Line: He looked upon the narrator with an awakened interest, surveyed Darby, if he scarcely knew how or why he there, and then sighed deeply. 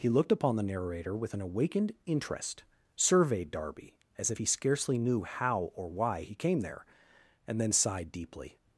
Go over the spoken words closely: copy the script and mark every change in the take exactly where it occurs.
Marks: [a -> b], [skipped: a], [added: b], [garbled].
He looked upon the narrator with an awakened interest, surveyed Darby, [added: as] if he scarcely knew how or why he [added: came] there, and then sighed deeply.